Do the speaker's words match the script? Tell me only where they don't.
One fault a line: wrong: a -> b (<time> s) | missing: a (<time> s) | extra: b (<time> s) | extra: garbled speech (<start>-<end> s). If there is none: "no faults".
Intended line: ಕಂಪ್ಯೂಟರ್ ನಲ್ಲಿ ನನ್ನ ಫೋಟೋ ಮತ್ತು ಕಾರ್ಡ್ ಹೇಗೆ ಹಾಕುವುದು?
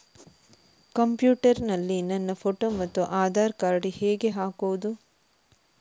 extra: ಆಧಾರ್ (3.2 s)